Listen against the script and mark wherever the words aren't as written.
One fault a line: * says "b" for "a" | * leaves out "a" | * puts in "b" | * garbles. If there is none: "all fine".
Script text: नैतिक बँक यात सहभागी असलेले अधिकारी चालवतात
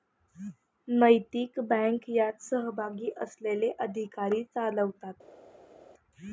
all fine